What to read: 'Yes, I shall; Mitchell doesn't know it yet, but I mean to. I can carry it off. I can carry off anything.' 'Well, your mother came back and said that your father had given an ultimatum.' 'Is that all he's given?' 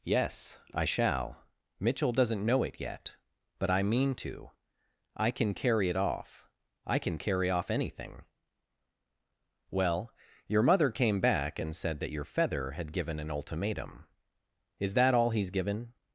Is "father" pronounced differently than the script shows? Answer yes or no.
yes